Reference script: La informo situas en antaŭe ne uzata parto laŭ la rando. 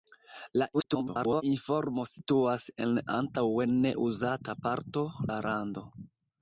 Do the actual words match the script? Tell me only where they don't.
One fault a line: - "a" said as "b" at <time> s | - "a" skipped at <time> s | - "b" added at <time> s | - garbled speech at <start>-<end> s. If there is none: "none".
- garbled speech at 0.7-1.4 s
- "laŭ" skipped at 5.1 s